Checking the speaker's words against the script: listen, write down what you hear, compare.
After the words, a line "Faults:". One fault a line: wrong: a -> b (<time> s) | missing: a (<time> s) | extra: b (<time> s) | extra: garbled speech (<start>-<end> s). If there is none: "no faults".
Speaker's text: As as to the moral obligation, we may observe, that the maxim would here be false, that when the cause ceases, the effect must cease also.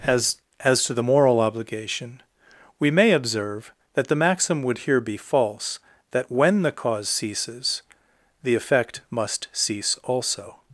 As as to the moral obligation, we may observe, that the maxim would here be false, that when the cause ceases, the effect must cease also.
Faults:
no faults